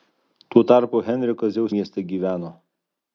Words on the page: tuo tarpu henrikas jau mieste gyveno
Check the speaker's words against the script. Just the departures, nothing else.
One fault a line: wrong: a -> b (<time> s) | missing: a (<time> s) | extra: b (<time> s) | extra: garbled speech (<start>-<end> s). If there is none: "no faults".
no faults